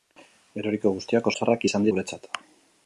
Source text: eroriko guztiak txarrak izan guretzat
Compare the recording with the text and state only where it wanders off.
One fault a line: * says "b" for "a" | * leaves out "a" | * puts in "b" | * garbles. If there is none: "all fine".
all fine